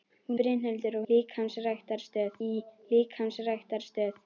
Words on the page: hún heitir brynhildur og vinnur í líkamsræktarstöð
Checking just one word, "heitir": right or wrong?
wrong